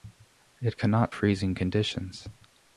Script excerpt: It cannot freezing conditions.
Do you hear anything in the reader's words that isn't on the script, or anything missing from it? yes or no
no